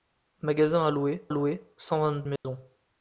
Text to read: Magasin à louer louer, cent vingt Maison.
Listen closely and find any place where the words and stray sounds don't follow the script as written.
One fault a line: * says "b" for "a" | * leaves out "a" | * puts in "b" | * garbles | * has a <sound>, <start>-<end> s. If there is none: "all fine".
* has a dropout, 2.4-2.4 s